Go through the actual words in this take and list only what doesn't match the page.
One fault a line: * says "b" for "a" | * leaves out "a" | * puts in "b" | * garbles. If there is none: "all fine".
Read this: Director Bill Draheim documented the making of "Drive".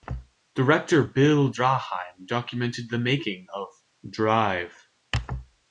all fine